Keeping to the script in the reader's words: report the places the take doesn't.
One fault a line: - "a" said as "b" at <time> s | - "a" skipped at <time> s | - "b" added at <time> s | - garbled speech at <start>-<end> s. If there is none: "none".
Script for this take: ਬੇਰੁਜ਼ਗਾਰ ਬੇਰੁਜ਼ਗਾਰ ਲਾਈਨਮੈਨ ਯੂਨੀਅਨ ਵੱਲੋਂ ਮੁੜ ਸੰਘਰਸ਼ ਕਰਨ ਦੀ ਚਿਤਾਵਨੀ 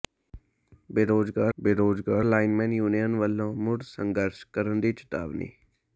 none